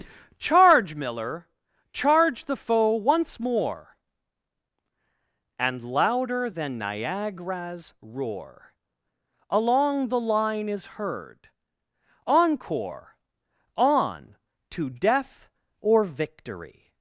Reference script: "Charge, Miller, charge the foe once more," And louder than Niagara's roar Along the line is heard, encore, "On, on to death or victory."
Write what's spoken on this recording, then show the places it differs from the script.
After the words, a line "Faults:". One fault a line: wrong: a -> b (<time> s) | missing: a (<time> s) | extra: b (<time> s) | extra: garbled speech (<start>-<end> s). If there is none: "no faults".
"Charge, Miller, charge the foe once more," And louder than Niagara's roar Along the line is heard, encore, "On, to death or victory."
Faults:
missing: on (14.4 s)